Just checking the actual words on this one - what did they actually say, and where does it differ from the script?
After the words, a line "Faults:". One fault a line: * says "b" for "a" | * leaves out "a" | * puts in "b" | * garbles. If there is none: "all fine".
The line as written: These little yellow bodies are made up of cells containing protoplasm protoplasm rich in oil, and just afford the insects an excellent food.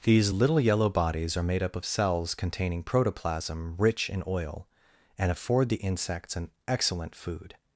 These little yellow bodies are made up of cells containing protoplasm rich in oil, and afford the insects an excellent food.
Faults:
* leaves out "protoplasm"
* leaves out "just"